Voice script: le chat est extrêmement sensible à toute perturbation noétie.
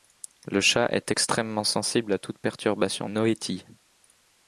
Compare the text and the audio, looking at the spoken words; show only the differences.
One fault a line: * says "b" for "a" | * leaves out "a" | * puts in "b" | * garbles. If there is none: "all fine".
all fine